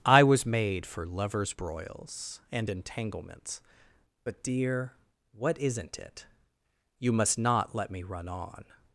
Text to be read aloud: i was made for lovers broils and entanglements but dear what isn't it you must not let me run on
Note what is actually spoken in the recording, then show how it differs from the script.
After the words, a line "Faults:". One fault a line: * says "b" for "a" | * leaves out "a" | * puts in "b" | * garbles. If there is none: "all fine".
i was made for lovers broils and entanglements but dear what isn't it you must not let me run on
Faults:
all fine